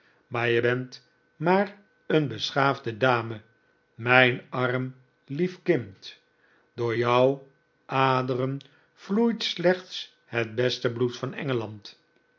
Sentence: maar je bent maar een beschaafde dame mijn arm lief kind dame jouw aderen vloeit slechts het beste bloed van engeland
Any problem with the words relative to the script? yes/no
yes